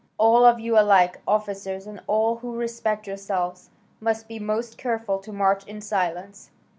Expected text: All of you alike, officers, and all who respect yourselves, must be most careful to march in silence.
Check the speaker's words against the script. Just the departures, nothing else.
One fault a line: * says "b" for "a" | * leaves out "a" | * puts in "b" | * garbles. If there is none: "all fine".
all fine